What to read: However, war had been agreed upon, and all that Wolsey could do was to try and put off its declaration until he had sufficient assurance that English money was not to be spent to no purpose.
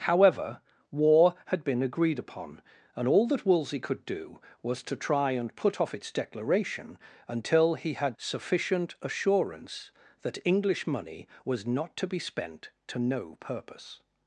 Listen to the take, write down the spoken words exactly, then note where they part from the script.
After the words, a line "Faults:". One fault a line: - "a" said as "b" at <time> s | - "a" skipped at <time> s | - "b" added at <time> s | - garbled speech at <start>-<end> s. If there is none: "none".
However, war had been agreed upon, and all that Wolsey could do was to try and put off its declaration until he had sufficient assurance that English money was not to be spent to no purpose.
Faults:
none